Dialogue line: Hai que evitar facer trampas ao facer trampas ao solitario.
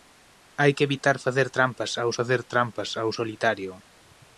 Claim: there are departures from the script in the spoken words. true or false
false